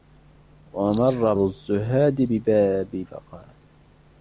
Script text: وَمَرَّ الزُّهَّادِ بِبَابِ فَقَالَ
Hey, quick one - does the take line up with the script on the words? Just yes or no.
yes